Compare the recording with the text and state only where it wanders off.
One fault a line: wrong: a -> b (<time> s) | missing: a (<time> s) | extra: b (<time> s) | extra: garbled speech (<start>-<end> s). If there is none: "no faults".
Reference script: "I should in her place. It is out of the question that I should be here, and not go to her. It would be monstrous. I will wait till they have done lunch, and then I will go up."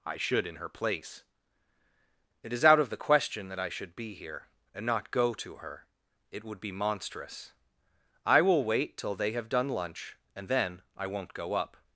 wrong: will -> won't (11.1 s)